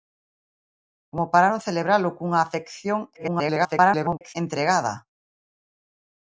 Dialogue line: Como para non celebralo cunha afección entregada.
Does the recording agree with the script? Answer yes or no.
no